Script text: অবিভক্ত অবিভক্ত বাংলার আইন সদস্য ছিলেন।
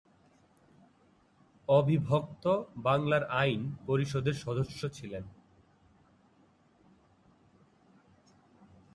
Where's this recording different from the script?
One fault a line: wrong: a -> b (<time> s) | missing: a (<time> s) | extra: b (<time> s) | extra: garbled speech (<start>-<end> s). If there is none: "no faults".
missing: অবিভক্ত (2.4 s)
extra: পরিষদের (3.9 s)